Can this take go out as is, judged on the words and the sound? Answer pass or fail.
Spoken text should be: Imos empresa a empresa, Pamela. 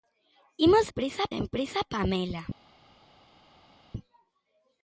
pass